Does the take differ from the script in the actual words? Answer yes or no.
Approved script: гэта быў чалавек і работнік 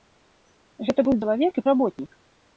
no